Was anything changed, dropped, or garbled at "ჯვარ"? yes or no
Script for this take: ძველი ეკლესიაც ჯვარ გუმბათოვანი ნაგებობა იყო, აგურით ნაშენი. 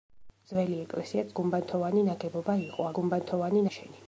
yes